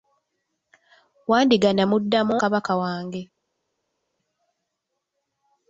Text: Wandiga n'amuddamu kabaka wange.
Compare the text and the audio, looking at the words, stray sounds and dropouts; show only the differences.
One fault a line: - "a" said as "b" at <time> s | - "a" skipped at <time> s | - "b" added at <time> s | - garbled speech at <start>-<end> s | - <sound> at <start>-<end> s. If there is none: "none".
none